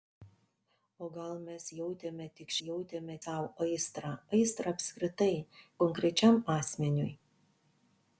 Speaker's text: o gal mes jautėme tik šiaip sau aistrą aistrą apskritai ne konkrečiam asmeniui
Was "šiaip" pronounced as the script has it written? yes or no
no